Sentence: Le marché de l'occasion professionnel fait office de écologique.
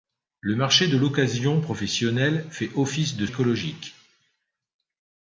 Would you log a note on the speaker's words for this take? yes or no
no